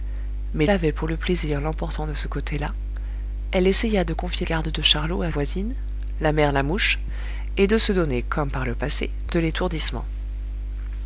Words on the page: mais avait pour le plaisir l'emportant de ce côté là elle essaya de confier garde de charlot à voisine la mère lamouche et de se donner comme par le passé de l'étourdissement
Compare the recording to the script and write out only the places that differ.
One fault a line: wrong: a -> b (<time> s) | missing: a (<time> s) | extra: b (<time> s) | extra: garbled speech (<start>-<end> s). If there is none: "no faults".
no faults